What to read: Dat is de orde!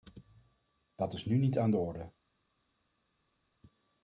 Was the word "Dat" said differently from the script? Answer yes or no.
no